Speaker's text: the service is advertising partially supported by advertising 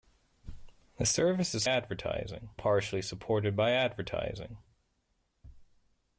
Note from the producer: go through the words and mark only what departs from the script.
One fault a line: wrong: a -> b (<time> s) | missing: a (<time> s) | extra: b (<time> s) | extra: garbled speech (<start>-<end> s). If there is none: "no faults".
no faults